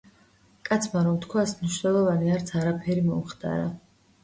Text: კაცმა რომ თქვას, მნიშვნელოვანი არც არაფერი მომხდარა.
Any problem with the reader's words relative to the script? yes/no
no